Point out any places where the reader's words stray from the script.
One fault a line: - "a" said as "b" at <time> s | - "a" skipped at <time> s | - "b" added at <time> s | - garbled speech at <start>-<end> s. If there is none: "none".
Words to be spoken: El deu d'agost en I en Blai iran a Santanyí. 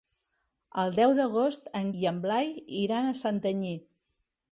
none